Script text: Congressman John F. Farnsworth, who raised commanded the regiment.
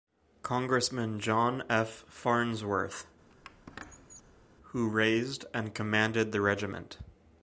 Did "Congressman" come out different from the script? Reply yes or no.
no